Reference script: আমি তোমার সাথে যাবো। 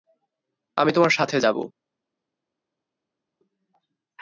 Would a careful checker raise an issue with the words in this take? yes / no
no